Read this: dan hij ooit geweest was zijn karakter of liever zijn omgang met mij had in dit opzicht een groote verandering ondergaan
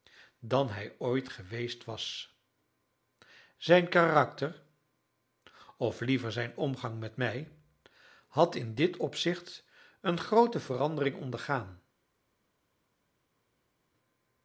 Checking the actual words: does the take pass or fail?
pass